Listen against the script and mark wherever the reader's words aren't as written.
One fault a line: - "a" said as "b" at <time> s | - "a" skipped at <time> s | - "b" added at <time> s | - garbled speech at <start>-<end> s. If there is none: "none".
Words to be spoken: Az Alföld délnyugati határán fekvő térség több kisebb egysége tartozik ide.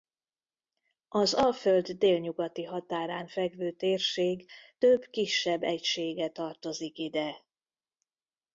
none